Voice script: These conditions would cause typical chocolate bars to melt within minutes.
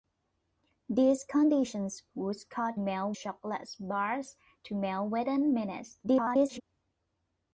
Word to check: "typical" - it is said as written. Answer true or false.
false